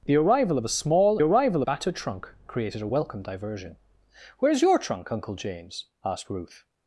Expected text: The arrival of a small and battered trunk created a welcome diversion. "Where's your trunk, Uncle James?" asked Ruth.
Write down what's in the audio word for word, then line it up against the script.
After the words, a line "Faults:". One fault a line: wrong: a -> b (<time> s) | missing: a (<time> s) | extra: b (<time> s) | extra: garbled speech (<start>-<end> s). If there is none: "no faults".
The arrival of a small arrival battered trunk created a welcome diversion. "Where's your trunk, Uncle James?" asked Ruth.
Faults:
wrong: and -> arrival (1.2 s)